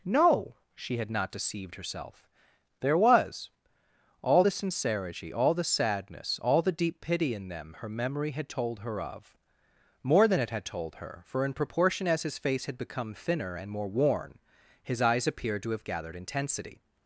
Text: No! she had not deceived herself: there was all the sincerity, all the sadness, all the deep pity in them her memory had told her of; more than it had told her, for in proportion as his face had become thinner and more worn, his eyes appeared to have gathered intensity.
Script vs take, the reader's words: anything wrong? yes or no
no